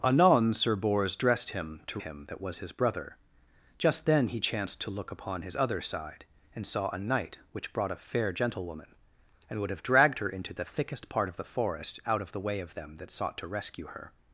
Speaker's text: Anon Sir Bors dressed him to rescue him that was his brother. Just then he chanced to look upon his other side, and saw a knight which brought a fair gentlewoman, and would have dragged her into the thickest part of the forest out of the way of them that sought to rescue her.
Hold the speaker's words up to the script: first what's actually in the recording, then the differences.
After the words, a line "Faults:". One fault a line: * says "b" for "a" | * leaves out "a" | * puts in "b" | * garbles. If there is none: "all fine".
Anon Sir Bors dressed him to him that was his brother. Just then he chanced to look upon his other side, and saw a knight which brought a fair gentlewoman, and would have dragged her into the thickest part of the forest out of the way of them that sought to rescue her.
Faults:
* leaves out "rescue"